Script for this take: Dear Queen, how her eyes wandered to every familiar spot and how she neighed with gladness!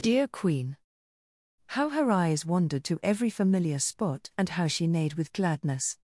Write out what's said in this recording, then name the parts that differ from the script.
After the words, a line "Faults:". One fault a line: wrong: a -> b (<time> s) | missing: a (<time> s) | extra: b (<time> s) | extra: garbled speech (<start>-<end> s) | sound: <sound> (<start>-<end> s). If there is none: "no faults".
Dear Queen, how her eyes wandered to every familiar spot and how she neighed with gladness!
Faults:
no faults